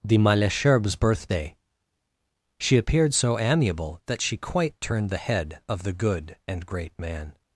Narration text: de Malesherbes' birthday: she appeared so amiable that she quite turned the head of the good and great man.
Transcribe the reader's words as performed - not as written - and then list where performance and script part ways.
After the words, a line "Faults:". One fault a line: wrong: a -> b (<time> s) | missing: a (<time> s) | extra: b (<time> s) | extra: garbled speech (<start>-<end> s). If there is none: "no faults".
de Malesherbes' birthday: she appeared so amiable that she quite turned the head of the good and great man.
Faults:
no faults